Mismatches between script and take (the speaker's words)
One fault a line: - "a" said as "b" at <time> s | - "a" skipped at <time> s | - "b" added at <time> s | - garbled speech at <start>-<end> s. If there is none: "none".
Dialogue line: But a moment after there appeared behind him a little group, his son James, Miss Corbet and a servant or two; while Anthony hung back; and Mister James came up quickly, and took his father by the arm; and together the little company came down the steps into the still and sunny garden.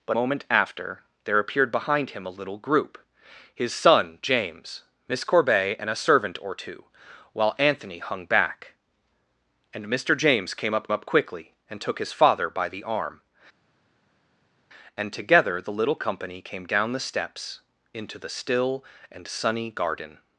- "a" skipped at 0.2 s
- "up" added at 10.9 s